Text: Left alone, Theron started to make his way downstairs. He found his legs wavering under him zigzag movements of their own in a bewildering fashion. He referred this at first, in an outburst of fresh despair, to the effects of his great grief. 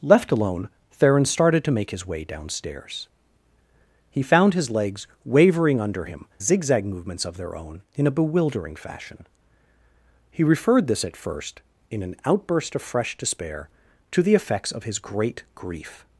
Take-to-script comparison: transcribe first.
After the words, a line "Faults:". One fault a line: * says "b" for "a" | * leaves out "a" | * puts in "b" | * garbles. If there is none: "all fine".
Left alone, Theron started to make his way downstairs. He found his legs wavering under him zigzag movements of their own in a bewildering fashion. He referred this at first, in an outburst of fresh despair, to the effects of his great grief.
Faults:
all fine